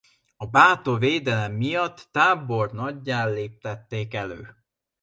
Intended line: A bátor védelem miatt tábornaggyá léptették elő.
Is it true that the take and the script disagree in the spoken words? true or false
false